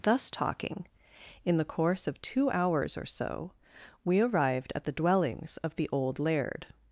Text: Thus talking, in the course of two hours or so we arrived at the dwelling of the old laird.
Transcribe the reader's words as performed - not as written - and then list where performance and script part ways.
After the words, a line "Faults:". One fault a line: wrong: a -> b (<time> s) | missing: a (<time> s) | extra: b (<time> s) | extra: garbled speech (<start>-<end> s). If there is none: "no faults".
Thus talking, in the course of two hours or so we arrived at the dwellings of the old laird.
Faults:
wrong: dwelling -> dwellings (4.9 s)